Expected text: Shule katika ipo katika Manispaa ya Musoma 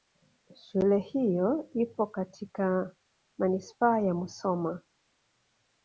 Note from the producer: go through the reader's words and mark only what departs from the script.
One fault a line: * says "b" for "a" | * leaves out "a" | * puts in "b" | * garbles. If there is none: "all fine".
* says "hiyo" for "katika"